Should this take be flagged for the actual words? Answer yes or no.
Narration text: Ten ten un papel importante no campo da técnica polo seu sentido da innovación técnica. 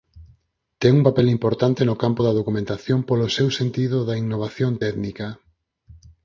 yes